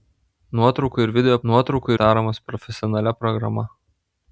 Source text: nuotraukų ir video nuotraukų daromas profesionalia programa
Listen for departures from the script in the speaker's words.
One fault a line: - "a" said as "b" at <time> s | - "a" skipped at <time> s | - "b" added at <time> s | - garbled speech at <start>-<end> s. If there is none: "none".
none